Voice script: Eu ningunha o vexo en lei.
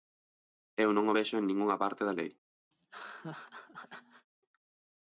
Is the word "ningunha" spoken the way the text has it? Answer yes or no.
no